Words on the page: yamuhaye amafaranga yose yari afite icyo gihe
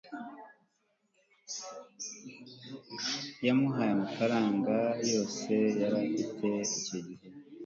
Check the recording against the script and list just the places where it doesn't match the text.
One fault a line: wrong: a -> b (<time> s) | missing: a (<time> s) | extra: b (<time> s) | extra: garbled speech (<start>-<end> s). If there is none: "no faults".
no faults